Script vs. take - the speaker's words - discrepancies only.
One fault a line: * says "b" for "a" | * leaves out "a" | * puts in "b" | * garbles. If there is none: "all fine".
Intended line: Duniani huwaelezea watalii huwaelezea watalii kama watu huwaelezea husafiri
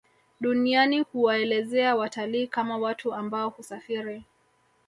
* leaves out "huwaelezea watalii"
* says "ambao" for "huwaelezea"